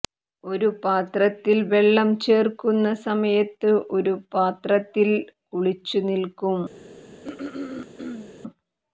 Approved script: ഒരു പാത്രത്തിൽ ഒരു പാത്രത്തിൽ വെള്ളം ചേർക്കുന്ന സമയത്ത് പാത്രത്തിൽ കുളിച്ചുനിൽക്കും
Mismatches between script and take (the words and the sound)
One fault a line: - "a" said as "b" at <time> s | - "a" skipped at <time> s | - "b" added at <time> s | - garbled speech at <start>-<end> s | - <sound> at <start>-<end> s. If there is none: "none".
- "ഒരു പാത്രത്തിൽ" skipped at 1.6 s
- "ഒരു" added at 4.0 s
- throat clearing at 7.2-8.4 s